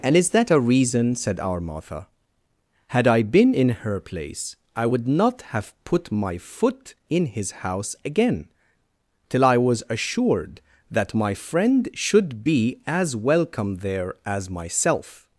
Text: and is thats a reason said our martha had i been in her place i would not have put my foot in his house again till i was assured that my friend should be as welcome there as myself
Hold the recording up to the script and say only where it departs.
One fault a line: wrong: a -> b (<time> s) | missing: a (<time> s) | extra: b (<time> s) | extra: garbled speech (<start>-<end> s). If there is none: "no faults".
wrong: thats -> that (0.3 s)